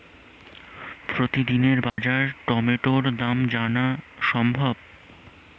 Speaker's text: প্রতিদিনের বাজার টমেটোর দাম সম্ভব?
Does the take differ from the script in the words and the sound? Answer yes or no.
yes